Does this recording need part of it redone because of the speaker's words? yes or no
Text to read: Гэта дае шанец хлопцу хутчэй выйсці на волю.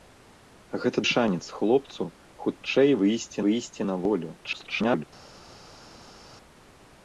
yes